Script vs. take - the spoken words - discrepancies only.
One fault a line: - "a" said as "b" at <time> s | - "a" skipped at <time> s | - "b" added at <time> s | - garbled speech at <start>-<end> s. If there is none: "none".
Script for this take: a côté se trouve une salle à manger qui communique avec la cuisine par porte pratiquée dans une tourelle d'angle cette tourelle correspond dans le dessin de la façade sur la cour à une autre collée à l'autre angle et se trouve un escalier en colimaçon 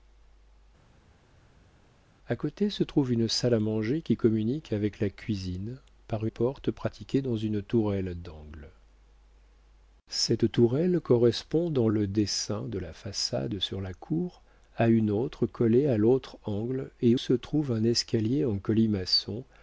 none